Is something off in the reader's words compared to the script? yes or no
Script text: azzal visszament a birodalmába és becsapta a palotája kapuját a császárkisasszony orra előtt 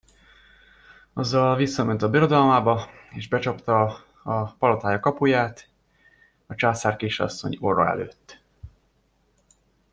no